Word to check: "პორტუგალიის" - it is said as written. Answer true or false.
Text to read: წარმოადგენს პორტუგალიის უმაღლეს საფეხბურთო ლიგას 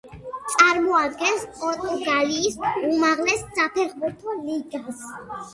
true